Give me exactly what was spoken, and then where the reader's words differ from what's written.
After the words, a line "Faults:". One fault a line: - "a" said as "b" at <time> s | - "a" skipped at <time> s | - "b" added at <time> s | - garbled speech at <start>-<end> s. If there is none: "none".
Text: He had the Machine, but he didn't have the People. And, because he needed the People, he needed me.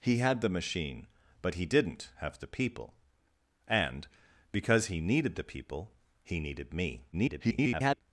He had the Machine, but he didn't have the People. And, because he needed the People, he needed me. [garbled]
Faults:
- garbled speech at 7.1-8.0 s